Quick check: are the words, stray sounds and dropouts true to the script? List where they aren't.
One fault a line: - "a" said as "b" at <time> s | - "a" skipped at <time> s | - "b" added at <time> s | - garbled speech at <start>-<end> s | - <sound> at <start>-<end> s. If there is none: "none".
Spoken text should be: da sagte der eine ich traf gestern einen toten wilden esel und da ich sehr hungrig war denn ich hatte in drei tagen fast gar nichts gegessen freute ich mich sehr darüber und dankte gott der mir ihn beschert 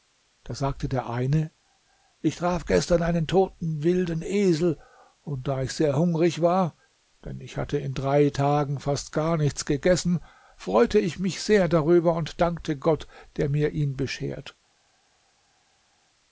none